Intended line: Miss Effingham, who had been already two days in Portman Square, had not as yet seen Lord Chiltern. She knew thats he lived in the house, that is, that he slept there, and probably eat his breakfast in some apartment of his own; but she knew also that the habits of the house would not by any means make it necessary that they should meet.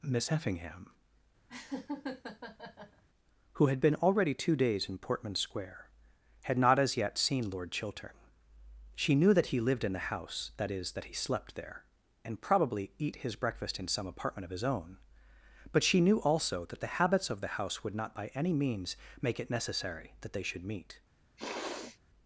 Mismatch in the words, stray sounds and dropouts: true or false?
true